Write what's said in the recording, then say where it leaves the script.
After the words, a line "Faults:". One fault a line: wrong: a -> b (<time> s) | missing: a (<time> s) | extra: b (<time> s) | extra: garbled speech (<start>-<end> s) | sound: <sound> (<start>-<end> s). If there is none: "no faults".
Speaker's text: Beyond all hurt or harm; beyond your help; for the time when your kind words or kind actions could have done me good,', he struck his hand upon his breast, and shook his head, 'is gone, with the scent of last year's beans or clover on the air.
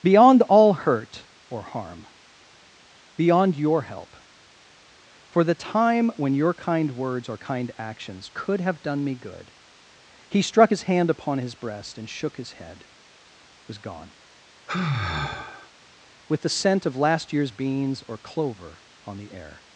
Beyond all hurt or harm; beyond your help; for the time when your kind words or kind actions could have done me good,', he struck his hand upon his breast, and shook his head, 'was gone, with the scent of last year's beans or clover on the air.
Faults:
wrong: is -> was (13.7 s)
sound: sigh (14.7-15.7 s)